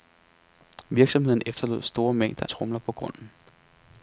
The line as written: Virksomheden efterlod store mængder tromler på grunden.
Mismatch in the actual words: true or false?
false